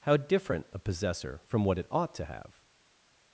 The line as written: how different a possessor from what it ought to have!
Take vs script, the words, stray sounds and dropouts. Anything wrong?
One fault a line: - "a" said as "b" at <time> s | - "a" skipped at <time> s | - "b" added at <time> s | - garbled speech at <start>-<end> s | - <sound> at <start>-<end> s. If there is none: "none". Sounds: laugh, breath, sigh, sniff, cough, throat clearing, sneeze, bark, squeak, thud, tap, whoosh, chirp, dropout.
none